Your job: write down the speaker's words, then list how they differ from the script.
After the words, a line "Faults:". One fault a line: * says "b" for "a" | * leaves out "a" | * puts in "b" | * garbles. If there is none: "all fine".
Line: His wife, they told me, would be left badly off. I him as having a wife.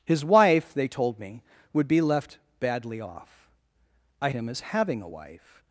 His wife, they told me, would be left badly off. I him as having a wife.
Faults:
all fine